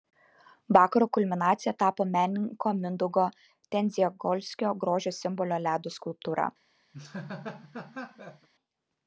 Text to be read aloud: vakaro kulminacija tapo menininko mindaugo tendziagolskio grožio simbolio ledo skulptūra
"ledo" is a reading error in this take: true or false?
false